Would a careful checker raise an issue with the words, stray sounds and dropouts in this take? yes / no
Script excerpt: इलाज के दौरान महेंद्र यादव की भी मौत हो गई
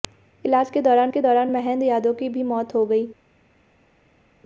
yes